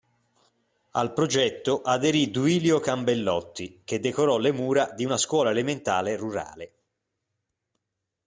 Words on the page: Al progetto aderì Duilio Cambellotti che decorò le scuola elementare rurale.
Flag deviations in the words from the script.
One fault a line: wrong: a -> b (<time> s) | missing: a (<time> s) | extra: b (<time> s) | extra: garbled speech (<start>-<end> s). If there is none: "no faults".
extra: mura di una (4.5 s)